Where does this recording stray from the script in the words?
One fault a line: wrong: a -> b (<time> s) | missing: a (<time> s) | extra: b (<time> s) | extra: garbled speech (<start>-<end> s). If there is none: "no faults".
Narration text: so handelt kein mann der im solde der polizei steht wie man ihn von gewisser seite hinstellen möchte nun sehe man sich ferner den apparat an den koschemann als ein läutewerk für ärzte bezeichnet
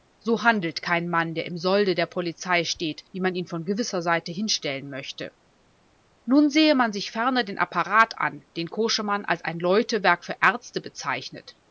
no faults